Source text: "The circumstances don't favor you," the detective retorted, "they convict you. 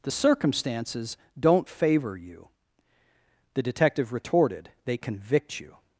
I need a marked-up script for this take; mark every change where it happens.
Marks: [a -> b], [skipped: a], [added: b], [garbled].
"The circumstances don't favor you," the detective retorted, "they convict you.